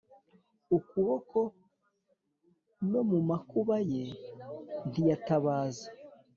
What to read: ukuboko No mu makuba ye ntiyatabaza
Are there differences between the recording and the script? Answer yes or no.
no